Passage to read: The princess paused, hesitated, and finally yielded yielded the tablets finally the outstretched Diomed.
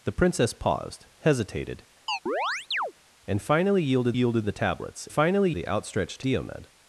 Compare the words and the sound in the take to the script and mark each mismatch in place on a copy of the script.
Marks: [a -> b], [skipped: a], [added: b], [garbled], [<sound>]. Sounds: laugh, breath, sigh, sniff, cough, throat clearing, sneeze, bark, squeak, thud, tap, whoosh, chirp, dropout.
The princess paused, hesitated, [chirp] and finally yielded yielded the tablets finally the outstretched Diomed.